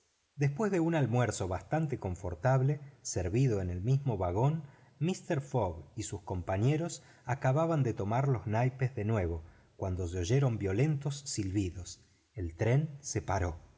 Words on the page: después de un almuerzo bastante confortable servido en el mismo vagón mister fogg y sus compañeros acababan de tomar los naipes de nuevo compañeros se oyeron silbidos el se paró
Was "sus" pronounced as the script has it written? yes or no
yes